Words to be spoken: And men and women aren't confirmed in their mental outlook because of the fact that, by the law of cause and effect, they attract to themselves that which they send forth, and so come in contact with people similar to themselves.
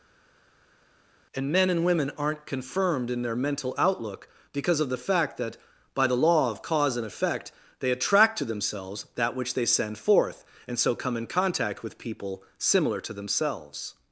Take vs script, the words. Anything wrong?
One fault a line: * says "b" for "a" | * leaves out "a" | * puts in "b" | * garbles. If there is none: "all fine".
all fine